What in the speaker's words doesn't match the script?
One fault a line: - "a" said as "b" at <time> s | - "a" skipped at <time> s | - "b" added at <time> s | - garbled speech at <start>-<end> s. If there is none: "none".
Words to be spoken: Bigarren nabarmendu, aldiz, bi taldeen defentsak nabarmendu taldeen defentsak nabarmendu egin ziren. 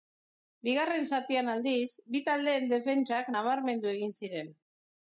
- "nabarmendu" said as "zatian" at 1.2 s
- "taldeen defentsak nabarmendu" skipped at 3.9 s